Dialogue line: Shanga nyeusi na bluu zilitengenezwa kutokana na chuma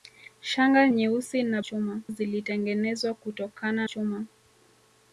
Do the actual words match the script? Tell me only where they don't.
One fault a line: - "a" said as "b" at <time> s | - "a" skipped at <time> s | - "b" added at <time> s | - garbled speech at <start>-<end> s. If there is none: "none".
- "bluu" said as "chuma" at 1.6 s
- "na" skipped at 3.9 s